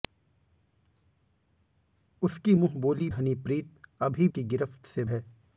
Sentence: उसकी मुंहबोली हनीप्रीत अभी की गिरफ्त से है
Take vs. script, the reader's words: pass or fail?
pass